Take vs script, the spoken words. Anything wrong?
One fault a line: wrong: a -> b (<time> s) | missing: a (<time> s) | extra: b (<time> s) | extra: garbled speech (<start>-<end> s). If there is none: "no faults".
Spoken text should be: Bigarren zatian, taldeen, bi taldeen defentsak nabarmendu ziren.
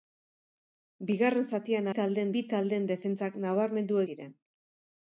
no faults